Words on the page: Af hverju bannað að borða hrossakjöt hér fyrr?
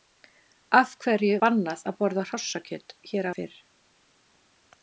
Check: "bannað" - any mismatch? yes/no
no